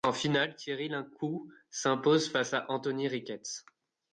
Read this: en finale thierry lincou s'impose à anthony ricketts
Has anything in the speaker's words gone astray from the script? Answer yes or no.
yes